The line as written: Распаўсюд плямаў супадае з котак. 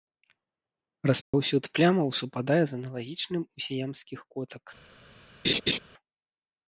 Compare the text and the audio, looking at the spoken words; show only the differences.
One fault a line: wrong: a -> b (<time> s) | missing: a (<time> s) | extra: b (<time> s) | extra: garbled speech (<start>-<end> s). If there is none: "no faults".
extra: аналагічным у сіямскіх (2.8 s)